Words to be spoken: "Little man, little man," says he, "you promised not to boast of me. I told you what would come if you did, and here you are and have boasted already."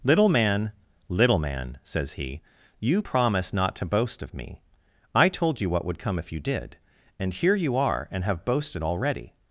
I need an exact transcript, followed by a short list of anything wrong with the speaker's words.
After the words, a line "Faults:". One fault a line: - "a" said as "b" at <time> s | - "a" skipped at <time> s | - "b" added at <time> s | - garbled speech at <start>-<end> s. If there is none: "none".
"Little man, little man," says he, "you promised not to boast of me. I told you what would come if you did, and here you are and have boasted already."
Faults:
none